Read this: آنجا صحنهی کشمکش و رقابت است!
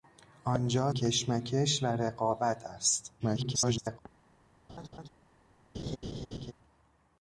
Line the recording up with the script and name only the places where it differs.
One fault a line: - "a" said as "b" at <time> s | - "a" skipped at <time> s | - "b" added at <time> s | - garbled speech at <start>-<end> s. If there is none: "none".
- "صحنهی" skipped at 0.9 s
- garbled speech at 3.2-4.0 s